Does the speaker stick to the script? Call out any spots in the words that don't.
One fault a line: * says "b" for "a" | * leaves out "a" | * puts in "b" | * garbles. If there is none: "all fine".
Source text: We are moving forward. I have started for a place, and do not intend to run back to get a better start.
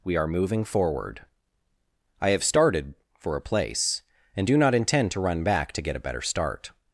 all fine